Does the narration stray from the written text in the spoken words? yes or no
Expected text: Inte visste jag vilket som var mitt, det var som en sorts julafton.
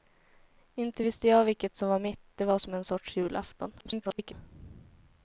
yes